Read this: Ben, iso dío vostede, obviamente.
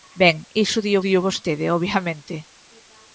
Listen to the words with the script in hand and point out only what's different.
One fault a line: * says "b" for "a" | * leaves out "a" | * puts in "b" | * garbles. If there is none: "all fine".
* puts in "dío"